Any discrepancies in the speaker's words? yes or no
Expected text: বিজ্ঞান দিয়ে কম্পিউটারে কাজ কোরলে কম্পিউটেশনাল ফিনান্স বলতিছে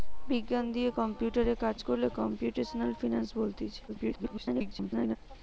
yes